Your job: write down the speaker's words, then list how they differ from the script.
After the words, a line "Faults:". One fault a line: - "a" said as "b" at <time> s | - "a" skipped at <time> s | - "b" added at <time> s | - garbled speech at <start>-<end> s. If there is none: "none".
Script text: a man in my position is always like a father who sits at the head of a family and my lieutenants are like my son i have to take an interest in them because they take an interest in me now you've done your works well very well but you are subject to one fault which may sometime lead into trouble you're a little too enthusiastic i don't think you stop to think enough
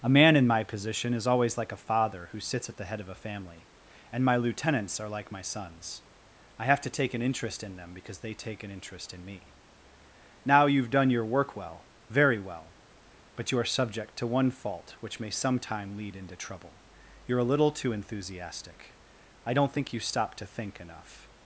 a man in my position is always like a father who sits at the head of a family and my lieutenants are like my sons i have to take an interest in them because they take an interest in me now you've done your work well very well but you are subject to one fault which may sometime lead into trouble you're a little too enthusiastic i don't think you stop to think enough
Faults:
- "son" said as "sons" at 5.4 s
- "works" said as "work" at 11.2 s